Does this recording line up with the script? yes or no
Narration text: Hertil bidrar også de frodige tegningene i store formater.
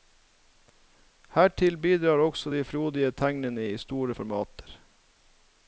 yes